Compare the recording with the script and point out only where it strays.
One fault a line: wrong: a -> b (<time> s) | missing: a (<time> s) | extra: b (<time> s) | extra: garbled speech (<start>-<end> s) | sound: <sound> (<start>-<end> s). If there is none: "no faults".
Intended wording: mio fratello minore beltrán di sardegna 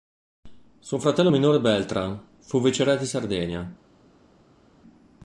wrong: mio -> suo (0.8 s)
extra: fu viceré (2.4 s)